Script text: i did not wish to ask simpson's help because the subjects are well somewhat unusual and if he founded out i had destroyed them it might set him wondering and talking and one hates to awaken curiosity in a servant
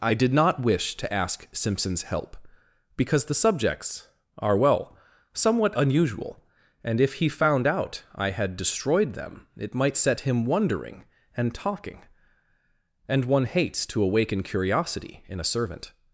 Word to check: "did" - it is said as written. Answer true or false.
true